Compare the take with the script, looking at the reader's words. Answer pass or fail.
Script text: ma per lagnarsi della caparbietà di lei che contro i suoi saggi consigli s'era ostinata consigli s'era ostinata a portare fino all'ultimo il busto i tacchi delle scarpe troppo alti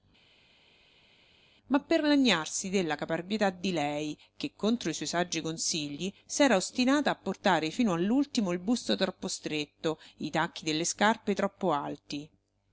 fail